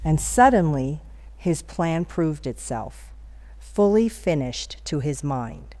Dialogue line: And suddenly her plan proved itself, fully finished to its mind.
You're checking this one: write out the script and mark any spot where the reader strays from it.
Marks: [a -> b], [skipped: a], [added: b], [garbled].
And suddenly [her -> his] plan proved itself, fully finished to [its -> his] mind.